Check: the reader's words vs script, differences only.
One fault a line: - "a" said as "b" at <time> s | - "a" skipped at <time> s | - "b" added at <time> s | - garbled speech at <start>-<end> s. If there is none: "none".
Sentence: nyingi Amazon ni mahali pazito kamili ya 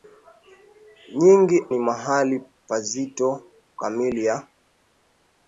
- "Amazon" skipped at 1.6 s